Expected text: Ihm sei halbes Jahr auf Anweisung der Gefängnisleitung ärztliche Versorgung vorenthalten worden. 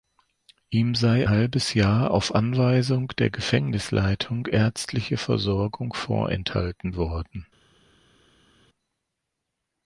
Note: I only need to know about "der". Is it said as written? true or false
true